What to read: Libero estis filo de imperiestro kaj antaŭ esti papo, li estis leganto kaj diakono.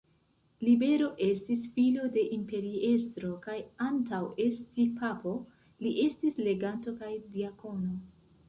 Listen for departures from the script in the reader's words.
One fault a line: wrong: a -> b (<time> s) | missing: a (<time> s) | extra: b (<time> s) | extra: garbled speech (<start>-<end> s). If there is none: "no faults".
no faults